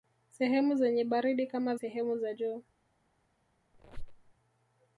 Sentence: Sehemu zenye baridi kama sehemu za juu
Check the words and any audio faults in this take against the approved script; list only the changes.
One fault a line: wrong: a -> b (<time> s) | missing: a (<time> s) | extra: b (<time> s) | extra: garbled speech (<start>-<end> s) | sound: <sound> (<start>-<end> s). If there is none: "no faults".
sound: squeak (3.7-4.3 s)